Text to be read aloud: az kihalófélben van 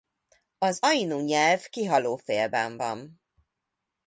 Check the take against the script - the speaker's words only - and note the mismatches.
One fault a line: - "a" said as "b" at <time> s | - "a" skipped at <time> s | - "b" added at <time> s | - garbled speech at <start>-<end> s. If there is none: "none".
- "ainu nyelv" added at 0.8 s